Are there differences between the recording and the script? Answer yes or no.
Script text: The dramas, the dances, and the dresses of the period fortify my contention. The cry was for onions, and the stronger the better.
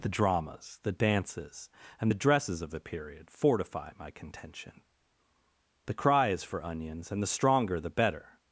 yes